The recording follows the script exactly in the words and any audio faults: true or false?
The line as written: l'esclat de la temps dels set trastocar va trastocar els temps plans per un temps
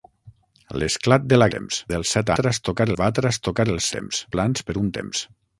true